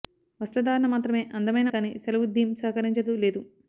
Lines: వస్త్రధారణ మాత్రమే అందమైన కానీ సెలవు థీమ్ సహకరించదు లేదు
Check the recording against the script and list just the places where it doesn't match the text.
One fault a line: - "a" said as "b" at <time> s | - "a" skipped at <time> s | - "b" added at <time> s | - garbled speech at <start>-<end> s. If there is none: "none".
none